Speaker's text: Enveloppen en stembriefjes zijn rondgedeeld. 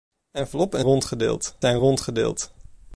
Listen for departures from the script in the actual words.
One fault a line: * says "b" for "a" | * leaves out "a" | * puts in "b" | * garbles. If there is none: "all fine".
* says "rondgedeeld" for "stembriefjes"